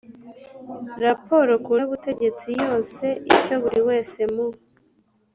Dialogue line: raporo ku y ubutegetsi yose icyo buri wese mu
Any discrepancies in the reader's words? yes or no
no